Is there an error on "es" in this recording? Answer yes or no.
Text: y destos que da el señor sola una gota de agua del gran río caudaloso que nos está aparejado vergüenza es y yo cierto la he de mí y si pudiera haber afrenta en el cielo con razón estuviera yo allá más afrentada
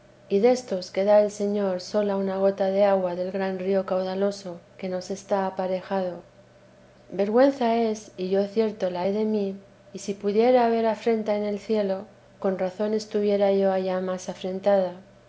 no